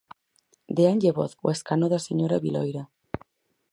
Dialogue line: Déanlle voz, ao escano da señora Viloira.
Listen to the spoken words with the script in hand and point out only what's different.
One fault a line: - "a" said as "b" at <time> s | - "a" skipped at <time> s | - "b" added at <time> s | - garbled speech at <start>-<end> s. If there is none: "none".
none